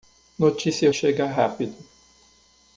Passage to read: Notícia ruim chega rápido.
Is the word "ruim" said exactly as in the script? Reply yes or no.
no